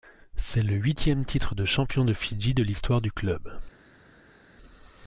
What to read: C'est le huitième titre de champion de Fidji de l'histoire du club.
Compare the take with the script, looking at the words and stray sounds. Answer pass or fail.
pass